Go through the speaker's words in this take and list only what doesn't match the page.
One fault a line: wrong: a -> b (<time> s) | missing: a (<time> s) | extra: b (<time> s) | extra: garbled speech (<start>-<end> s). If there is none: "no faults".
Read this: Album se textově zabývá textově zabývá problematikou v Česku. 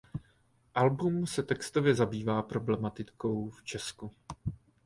missing: textově zabývá (2.4 s)